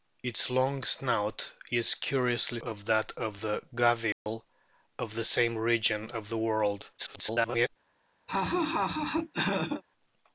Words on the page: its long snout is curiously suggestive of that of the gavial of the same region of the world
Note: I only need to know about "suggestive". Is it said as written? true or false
false